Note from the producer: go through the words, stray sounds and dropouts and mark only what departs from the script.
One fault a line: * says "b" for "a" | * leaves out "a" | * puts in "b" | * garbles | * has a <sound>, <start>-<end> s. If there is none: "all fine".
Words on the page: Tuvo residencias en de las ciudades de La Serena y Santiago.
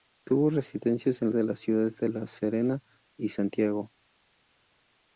all fine